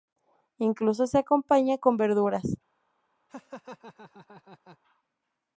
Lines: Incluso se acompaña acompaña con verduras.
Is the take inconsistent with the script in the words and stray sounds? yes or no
yes